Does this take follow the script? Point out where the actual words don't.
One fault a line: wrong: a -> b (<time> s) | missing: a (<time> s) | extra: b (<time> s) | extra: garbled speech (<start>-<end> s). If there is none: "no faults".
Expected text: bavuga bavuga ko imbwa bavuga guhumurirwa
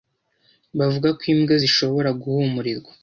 missing: bavuga (1.1 s)
wrong: bavuga -> zishobora (1.6 s)